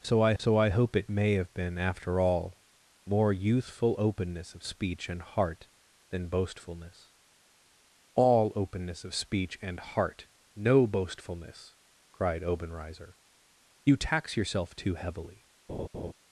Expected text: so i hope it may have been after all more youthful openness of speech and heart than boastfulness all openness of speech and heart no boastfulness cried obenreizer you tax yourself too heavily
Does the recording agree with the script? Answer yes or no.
no